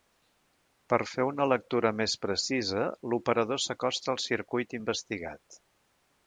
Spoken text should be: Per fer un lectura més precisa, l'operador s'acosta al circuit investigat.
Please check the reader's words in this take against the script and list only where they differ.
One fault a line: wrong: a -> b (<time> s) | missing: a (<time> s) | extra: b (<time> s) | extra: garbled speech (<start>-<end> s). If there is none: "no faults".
wrong: un -> una (1.3 s)